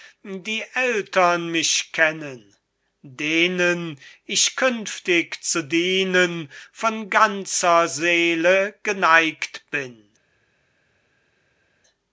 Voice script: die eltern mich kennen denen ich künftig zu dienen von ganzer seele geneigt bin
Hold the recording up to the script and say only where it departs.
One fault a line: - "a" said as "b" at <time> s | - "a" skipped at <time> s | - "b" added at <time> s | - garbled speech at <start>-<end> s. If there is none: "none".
none